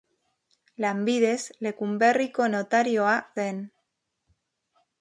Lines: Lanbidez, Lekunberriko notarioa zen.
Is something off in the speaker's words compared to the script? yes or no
no